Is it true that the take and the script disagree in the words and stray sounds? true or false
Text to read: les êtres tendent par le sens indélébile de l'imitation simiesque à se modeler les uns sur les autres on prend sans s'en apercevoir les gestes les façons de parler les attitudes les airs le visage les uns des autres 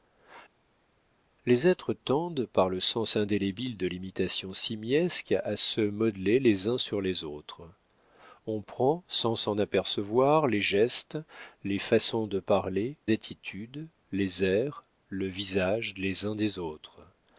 true